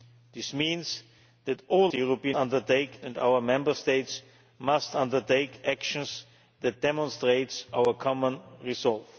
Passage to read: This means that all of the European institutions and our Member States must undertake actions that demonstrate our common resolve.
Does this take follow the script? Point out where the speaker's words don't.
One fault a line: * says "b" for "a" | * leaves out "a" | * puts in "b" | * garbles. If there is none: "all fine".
* leaves out "of"
* says "undertake" for "institutions"